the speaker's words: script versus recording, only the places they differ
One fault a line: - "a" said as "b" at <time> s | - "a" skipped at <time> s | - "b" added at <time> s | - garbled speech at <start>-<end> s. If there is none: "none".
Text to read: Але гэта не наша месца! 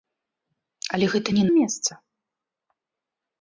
- "наша" skipped at 1.4 s